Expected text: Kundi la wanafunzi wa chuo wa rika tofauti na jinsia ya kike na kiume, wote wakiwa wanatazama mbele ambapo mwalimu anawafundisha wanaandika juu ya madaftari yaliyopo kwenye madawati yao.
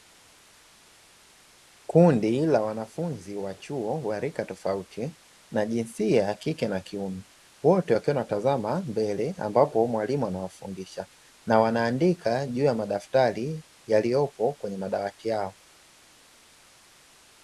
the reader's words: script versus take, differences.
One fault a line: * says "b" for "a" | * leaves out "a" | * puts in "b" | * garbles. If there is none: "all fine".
* puts in "na"